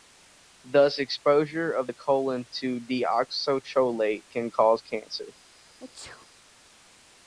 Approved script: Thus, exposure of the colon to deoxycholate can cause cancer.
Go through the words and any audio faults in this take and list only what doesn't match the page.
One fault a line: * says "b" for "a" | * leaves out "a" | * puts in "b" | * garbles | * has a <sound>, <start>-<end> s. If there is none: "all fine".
* has a sneeze, 5.8-6.3 s